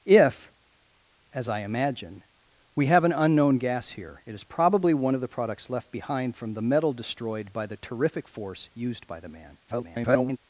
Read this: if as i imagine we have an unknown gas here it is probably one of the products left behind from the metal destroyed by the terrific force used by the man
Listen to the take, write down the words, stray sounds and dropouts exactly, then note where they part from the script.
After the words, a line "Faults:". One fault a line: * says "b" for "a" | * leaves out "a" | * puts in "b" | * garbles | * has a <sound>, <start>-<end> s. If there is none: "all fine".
if as i imagine we have an unknown gas here it is probably one of the products left behind from the metal destroyed by the terrific force used by the man [garbled]
Faults:
* garbles